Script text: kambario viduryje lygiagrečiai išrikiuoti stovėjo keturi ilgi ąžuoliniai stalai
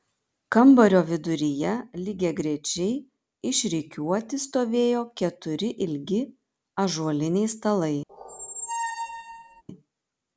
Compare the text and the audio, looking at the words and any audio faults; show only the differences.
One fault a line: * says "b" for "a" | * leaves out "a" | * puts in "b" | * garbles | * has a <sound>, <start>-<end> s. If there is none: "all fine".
* has a squeak, 8.1-9.6 s